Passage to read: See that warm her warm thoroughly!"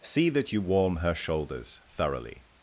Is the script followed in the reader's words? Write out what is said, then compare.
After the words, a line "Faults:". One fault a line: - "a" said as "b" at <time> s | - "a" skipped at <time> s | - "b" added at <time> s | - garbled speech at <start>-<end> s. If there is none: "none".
See that you warm her shoulders thoroughly!"
Faults:
- "you" added at 0.5 s
- "warm" said as "shoulders" at 1.1 s